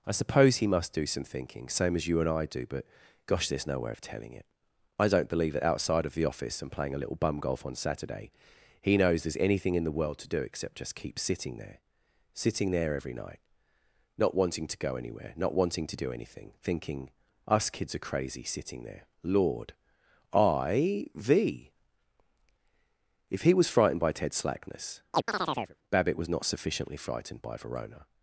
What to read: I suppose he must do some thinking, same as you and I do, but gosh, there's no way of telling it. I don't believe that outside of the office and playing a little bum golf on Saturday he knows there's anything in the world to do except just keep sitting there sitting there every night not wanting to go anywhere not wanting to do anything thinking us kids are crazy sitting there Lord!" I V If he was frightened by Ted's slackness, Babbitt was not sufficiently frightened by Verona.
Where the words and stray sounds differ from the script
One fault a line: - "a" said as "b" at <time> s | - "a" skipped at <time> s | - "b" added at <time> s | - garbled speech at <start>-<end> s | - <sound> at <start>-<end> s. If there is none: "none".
- chirp at 25.1-25.8 s